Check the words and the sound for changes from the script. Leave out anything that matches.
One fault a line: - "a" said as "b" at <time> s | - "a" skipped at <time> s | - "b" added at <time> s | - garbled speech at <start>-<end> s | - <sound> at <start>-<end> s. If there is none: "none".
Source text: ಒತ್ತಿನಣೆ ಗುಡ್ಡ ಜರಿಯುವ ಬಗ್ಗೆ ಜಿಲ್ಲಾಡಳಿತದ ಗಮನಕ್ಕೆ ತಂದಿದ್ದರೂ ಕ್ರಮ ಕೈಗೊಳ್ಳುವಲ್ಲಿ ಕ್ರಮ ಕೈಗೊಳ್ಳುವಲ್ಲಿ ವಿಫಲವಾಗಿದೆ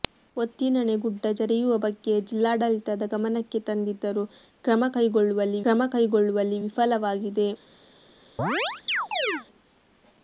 - chirp at 8.4-9.5 s